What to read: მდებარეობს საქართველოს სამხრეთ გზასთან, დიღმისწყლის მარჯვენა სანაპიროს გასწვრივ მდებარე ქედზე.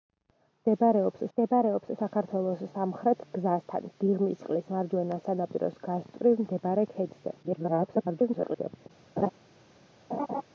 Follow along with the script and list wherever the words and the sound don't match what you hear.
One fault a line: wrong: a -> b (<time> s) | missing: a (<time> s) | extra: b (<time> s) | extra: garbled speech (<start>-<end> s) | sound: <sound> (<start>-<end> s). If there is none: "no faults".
extra: მდებარეობს (1.3 s)
extra: garbled speech (7.4-8.9 s)
sound: laugh (9.2-9.3 s)
sound: laugh (10.1-10.4 s)